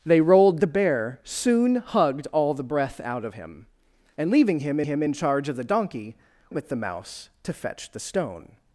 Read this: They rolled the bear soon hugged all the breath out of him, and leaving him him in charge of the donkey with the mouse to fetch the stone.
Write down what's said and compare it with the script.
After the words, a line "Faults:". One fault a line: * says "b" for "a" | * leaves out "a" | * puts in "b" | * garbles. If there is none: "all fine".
They rolled the bear soon hugged all the breath out of him, and leaving him him in charge of the donkey with the mouse to fetch the stone.
Faults:
all fine